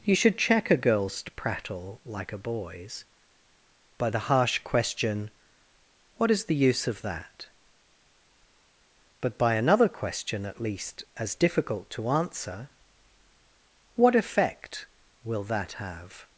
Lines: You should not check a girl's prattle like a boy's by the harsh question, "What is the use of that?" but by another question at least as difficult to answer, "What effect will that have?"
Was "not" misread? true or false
true